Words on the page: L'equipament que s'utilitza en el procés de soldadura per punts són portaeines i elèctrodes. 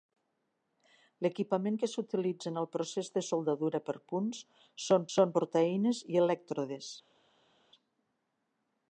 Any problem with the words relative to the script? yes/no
yes